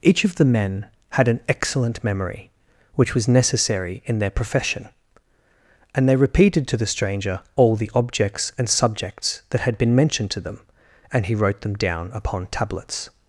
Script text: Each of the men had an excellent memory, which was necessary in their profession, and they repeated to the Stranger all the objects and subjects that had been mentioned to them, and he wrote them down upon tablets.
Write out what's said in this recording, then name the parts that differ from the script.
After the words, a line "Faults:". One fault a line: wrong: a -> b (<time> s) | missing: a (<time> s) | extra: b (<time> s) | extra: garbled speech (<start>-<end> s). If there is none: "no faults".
Each of the men had an excellent memory, which was necessary in their profession, and they repeated to the Stranger all the objects and subjects that had been mentioned to them, and he wrote them down upon tablets.
Faults:
no faults